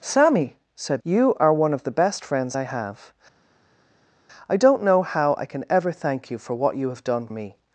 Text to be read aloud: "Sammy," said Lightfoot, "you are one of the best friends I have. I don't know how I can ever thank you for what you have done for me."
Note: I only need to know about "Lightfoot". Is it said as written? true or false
false